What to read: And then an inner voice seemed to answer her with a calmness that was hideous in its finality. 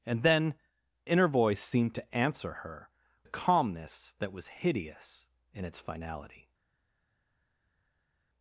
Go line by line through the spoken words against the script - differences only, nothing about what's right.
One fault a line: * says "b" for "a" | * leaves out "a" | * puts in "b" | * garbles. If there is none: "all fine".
* leaves out "an"
* leaves out "with"